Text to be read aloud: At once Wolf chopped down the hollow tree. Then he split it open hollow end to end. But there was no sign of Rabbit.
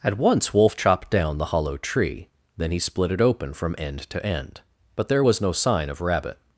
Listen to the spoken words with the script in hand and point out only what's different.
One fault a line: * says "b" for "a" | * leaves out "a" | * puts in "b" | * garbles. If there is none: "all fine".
* says "from" for "hollow"